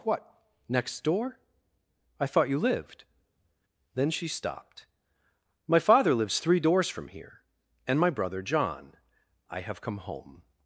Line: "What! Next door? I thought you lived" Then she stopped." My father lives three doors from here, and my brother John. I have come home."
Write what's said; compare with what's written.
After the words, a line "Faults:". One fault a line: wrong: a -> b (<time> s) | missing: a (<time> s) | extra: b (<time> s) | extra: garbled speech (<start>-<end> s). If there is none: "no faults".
"What! Next door? I thought you lived" Then she stopped." My father lives three doors from here, and my brother John. I have come home."
Faults:
no faults